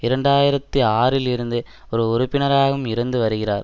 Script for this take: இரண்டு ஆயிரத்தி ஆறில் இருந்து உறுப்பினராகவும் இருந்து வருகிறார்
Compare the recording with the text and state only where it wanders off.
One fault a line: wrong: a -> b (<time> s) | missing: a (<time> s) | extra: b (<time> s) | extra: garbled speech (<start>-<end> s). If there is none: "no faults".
extra: ஒரு (1.9 s)